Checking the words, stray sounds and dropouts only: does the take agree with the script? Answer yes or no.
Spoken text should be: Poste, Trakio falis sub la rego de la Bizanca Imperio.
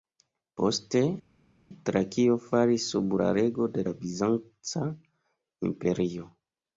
yes